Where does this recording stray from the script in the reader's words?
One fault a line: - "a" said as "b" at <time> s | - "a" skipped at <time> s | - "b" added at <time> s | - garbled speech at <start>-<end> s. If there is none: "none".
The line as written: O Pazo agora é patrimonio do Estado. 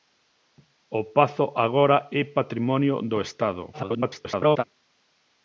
- garbled speech at 3.7-4.6 s